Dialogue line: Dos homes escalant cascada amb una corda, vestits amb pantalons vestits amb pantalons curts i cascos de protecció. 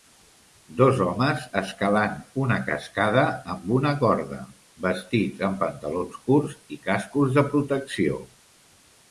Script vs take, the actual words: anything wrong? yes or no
yes